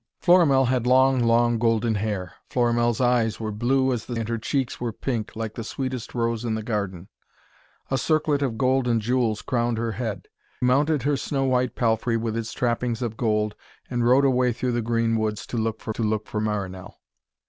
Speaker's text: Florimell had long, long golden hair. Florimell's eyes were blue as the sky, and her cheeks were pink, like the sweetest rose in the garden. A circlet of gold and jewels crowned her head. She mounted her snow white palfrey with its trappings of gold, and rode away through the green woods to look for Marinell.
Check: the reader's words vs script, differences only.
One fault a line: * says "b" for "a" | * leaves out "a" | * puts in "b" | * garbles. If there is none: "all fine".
* leaves out "sky"
* leaves out "She"
* puts in "to look for"